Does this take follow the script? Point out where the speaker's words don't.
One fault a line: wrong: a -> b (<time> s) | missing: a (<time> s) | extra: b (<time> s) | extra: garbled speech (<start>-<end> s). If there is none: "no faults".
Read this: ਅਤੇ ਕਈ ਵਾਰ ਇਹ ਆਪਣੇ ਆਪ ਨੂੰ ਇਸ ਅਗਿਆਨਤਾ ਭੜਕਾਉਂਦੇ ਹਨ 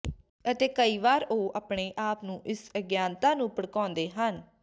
wrong: ਇਹ -> ਉਹ (1.2 s)
extra: ਨੂੰ (3.4 s)